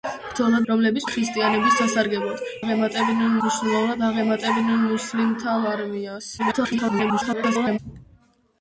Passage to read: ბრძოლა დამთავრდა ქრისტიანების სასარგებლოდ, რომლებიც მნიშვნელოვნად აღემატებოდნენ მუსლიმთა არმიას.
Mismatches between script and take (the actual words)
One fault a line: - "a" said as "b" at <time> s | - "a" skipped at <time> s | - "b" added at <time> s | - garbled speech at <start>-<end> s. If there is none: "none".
- "დამთავრდა" said as "რომლებიც" at 0.7 s
- "რომლებიც" said as "აღემატებოდნენ" at 2.6 s
- garbled speech at 6.4-7.8 s